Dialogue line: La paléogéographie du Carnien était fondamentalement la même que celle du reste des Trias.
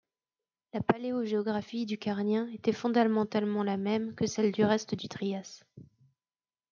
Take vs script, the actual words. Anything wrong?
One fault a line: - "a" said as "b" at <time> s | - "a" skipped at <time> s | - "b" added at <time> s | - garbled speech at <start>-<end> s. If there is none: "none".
- "des" said as "du" at 4.9 s